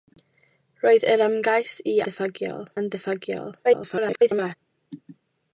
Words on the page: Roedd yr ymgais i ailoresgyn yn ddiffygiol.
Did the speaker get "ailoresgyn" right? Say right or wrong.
wrong